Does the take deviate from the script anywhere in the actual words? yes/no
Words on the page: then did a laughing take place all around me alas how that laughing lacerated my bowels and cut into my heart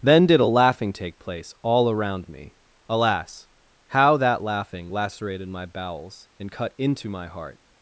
no